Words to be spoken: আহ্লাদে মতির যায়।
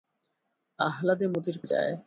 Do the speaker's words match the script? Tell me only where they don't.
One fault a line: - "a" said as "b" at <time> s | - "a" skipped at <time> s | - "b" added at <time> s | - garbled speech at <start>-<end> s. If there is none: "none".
none